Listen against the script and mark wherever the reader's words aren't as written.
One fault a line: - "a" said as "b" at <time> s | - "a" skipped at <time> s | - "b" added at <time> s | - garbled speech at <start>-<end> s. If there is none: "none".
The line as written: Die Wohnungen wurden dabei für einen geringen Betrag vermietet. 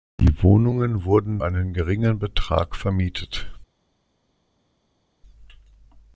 - "dabei für" skipped at 1.4 s